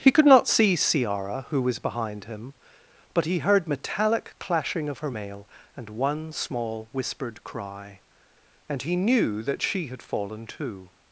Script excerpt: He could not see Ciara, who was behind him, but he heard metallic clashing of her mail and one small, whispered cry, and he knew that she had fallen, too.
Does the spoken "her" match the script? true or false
true